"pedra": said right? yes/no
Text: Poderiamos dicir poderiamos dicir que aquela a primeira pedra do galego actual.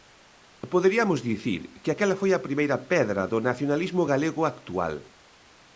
yes